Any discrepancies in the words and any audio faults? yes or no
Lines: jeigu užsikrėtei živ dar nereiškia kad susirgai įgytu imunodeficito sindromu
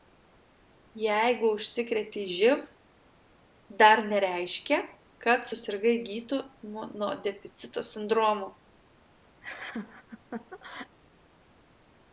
yes